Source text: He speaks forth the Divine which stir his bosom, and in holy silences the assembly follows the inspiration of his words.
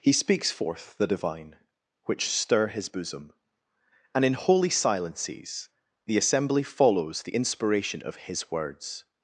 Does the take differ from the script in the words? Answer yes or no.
no